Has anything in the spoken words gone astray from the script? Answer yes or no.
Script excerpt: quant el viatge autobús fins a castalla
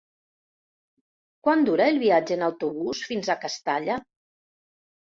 yes